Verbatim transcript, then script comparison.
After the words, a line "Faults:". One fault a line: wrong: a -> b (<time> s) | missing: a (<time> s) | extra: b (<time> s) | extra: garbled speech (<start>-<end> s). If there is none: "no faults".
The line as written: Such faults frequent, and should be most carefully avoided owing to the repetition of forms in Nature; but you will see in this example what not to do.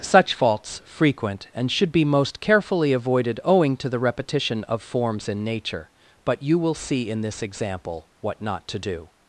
Such faults frequent, and should be most carefully avoided owing to the repetition of forms in Nature; but you will see in this example what not to do.
Faults:
no faults